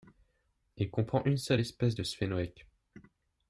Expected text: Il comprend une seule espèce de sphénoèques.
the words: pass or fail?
pass